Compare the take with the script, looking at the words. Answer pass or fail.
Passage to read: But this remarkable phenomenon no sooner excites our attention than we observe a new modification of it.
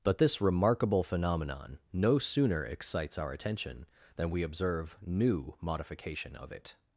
fail